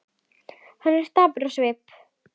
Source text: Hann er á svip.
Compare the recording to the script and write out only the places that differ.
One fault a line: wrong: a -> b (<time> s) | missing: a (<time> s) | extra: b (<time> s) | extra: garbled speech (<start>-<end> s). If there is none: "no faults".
extra: dapur (1.1 s)